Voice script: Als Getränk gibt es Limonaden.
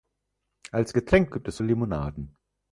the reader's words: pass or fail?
pass